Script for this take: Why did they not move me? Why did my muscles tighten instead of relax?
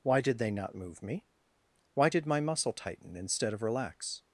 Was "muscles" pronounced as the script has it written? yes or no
no